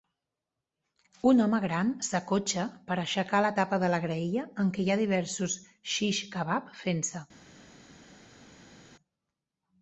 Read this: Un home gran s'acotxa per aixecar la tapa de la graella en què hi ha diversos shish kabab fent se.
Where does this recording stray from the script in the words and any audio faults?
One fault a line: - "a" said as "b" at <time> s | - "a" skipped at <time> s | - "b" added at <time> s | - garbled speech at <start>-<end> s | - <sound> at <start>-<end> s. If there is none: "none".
none